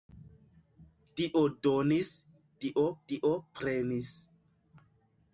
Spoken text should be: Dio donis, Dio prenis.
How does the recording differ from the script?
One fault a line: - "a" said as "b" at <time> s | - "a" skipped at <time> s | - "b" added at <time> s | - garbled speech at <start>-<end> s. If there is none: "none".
- "Dio" added at 3.1 s